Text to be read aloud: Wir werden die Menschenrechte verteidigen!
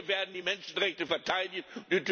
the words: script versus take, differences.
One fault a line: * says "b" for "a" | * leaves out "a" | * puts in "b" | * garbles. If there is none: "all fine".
all fine